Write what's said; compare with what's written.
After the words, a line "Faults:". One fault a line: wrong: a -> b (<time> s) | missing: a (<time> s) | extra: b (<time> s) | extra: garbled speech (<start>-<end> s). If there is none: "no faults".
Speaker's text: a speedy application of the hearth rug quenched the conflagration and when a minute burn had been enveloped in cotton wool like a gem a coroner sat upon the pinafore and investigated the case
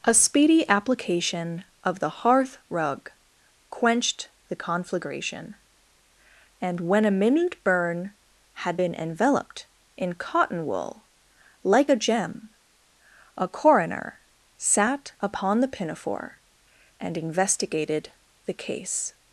a speedy application of the hearth rug quenched the conflagration and when a minute burn had been enveloped in cotton wool like a gem a coroner sat upon the pinafore and investigated the case
Faults:
no faults